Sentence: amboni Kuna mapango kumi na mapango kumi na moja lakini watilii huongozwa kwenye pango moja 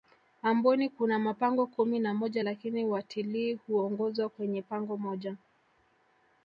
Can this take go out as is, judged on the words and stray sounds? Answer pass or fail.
fail